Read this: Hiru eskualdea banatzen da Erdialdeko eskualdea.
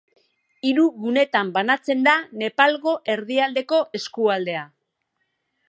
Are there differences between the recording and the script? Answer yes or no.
yes